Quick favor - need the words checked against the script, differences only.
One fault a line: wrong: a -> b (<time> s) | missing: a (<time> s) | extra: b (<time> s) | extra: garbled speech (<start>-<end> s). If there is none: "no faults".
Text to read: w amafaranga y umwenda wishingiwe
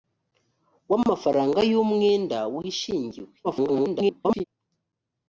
extra: garbled speech (3.4-4.4 s)